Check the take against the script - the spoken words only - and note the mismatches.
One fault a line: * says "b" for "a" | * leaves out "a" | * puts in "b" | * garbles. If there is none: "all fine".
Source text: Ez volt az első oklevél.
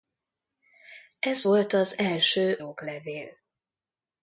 all fine